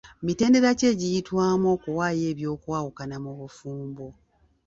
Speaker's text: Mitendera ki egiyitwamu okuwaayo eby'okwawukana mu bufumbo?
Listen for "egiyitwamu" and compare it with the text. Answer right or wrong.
right